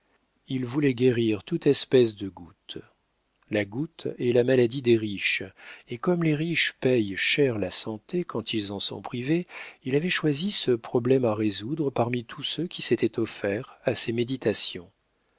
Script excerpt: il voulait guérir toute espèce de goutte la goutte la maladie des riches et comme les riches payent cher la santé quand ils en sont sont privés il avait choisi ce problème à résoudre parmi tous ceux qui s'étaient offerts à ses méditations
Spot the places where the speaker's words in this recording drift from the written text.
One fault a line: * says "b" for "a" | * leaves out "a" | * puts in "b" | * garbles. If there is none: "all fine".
* puts in "est"
* leaves out "sont"